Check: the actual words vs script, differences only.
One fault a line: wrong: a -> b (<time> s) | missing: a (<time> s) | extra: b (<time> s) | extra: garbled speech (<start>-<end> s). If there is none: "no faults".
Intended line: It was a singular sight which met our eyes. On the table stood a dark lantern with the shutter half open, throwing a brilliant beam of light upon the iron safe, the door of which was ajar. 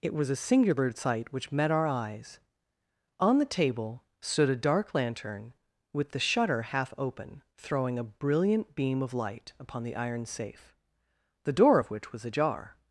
no faults